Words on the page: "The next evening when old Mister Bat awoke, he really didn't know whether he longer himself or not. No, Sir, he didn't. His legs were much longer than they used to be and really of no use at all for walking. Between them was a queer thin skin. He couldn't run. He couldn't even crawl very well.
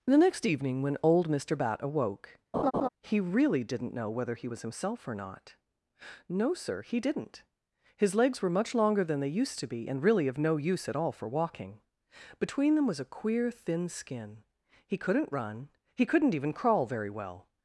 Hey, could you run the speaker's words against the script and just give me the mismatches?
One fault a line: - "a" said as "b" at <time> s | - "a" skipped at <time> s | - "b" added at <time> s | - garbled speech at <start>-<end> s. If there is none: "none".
- "longer" said as "was" at 4.5 s